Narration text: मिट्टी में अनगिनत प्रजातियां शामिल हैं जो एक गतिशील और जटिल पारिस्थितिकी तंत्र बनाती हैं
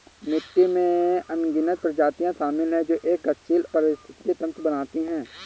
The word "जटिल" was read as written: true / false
false